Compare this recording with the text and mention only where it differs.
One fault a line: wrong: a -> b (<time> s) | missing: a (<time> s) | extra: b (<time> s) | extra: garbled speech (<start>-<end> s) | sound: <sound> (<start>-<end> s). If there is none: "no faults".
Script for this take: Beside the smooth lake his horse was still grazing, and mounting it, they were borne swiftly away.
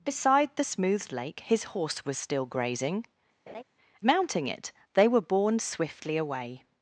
missing: and (3.0 s)
sound: laugh (3.5-3.6 s)